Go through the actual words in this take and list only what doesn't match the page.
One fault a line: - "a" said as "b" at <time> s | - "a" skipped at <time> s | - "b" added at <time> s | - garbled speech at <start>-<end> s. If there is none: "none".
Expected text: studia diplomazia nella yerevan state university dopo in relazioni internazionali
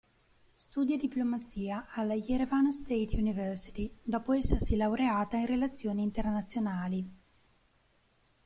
- "nella" said as "alla" at 1.9 s
- "essersi laureata" added at 4.3 s